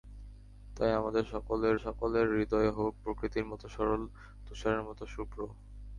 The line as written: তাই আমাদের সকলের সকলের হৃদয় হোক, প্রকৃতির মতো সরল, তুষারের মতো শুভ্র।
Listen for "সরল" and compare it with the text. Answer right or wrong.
right